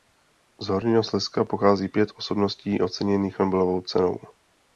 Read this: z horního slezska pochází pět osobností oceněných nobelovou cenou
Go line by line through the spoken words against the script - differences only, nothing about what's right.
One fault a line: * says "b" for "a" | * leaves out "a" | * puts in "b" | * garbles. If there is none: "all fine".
all fine